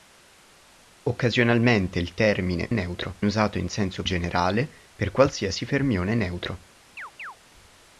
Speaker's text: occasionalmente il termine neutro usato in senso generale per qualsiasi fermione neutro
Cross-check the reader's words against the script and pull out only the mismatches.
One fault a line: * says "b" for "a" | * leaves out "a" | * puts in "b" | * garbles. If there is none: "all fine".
all fine